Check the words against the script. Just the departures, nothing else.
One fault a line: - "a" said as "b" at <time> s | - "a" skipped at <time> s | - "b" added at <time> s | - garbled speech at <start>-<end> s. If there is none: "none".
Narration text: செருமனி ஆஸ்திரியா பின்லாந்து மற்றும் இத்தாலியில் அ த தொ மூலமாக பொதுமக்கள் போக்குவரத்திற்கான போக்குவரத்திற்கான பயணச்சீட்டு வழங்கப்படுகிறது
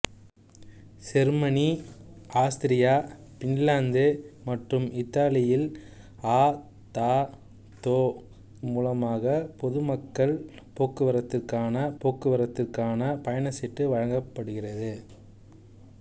none